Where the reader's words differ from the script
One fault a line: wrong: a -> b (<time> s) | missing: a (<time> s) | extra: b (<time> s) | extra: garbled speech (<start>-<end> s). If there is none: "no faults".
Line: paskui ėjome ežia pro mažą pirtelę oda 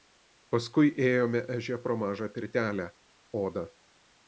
no faults